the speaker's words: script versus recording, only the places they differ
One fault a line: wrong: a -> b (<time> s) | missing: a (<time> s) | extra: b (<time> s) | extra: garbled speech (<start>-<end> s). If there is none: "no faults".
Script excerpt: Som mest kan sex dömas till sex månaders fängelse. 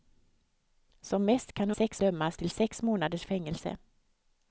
no faults